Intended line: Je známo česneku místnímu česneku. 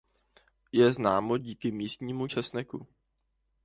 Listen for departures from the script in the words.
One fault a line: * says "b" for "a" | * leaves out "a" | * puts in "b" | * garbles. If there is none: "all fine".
* says "díky" for "česneku"